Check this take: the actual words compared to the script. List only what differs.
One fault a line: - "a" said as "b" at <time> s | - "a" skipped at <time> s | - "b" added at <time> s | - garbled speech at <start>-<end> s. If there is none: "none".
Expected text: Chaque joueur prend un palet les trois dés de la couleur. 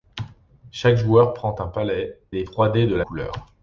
none